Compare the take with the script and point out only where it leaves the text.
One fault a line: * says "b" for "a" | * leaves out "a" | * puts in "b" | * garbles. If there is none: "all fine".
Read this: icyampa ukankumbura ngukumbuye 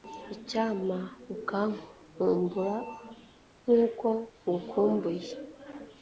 * puts in "nk'uko"